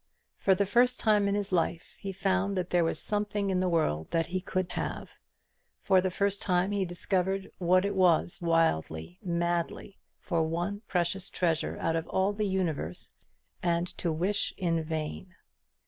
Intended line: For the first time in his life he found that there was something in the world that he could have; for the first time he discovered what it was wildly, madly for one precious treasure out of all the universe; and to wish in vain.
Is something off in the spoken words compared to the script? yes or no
no